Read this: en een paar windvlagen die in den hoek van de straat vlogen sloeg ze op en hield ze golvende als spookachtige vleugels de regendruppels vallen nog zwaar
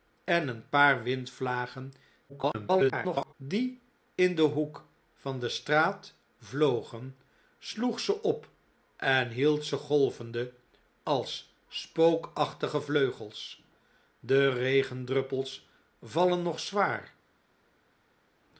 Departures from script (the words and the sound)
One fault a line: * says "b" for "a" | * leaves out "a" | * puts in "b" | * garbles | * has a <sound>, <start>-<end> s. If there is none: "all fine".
* garbles